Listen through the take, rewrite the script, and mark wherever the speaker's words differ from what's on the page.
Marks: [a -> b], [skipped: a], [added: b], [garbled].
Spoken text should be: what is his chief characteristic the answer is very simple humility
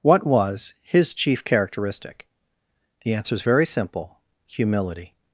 what [is -> was] his chief characteristic the answer is very simple humility